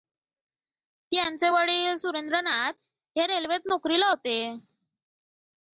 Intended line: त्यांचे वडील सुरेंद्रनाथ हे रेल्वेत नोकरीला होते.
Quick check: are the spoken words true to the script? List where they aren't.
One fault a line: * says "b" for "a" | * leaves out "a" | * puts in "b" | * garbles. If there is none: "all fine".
all fine